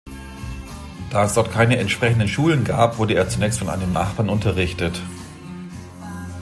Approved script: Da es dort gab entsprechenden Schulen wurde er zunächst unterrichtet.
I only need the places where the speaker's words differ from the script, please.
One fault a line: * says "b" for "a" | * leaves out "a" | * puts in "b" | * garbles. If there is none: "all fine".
* says "keine" for "gab"
* puts in "gab"
* puts in "von einem Nachbarn"